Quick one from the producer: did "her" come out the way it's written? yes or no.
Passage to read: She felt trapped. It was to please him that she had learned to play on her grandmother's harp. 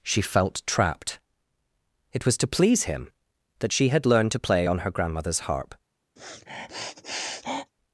yes